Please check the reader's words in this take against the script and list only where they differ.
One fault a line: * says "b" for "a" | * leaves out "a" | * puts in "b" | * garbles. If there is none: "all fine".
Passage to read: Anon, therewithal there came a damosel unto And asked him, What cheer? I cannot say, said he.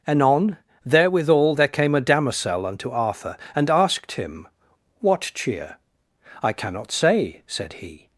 * puts in "Arthur"